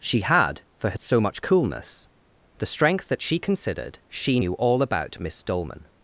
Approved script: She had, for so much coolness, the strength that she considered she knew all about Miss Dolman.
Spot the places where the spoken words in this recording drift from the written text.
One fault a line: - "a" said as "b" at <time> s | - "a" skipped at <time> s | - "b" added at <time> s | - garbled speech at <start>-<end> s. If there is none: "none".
none